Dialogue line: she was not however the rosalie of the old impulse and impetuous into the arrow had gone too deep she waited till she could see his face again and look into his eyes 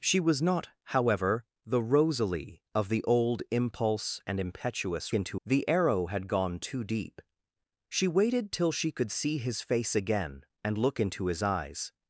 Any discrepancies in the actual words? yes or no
no